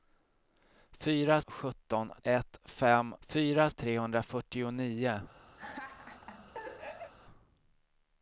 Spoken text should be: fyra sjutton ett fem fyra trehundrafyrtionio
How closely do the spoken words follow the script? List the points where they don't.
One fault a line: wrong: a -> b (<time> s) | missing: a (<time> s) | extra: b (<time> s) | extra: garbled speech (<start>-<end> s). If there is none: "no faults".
no faults